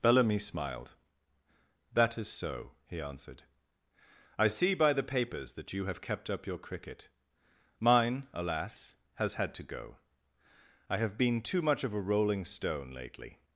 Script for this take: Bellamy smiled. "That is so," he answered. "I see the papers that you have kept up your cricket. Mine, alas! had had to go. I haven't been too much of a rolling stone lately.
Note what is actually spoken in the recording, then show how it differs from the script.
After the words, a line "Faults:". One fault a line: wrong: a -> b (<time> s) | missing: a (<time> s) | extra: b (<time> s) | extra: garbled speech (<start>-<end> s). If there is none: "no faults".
Bellamy smiled. "That is so," he answered. "I see by the papers that you have kept up your cricket. Mine, alas! has had to go. I have been too much of a rolling stone lately.
Faults:
extra: by (4.7 s)
wrong: had -> has (9.1 s)
wrong: haven't -> have (11.0 s)